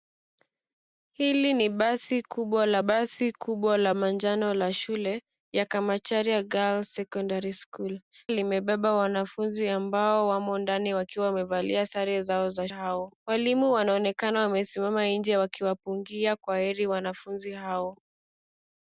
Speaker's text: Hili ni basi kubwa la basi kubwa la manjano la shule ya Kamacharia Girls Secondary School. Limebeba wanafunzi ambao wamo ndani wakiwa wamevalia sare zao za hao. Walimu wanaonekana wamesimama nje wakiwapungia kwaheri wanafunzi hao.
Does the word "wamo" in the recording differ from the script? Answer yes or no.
no